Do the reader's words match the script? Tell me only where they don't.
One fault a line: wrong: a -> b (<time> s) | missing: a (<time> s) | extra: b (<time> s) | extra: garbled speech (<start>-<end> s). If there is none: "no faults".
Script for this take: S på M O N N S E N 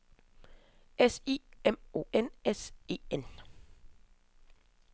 wrong: på -> I (1.3 s)
missing: N (2.3 s)